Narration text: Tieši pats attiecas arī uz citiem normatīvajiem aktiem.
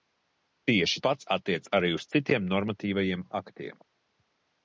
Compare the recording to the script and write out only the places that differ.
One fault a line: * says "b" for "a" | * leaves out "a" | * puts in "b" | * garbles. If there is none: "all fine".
all fine